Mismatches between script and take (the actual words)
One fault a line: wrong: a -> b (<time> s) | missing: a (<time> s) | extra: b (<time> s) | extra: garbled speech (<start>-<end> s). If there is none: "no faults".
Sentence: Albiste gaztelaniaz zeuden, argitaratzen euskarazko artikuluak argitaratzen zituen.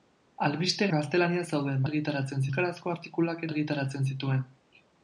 no faults